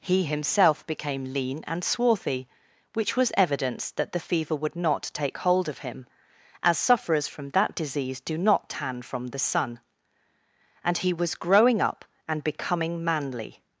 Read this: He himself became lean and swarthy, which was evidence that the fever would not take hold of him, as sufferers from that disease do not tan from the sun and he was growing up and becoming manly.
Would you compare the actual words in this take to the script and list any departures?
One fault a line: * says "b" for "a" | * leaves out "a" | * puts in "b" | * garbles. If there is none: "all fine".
all fine